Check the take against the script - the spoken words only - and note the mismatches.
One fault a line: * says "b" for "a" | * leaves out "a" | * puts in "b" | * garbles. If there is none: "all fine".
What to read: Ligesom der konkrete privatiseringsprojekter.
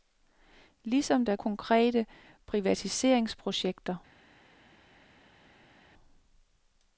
all fine